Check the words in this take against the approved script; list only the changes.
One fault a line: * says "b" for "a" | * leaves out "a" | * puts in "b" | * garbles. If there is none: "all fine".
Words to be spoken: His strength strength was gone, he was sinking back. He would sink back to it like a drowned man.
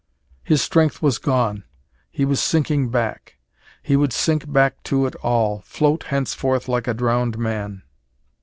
* leaves out "strength"
* puts in "all float henceforth"